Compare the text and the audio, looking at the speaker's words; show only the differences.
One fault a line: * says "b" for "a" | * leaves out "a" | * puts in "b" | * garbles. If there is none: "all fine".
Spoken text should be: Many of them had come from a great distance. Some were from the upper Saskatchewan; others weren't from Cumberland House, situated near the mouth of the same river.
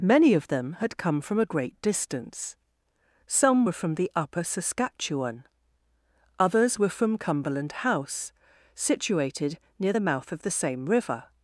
* says "were" for "weren't"